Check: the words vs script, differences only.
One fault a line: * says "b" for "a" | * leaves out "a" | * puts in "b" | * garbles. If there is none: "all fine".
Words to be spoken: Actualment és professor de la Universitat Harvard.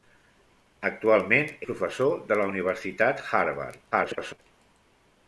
* leaves out "és"
* garbles